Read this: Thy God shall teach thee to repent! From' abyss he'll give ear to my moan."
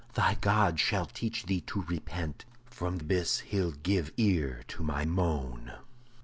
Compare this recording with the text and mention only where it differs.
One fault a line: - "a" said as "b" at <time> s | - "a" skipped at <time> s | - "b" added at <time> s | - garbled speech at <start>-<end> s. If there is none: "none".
none